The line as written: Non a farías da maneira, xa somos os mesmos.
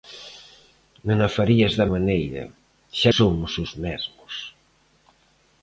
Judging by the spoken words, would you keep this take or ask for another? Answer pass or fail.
pass